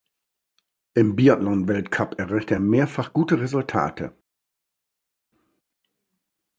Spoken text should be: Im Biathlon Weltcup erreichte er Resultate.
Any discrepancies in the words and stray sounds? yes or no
yes